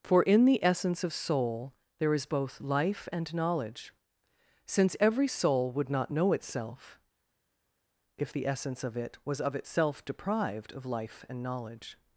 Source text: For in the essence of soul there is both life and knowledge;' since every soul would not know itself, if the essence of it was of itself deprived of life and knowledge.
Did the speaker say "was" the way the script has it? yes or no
yes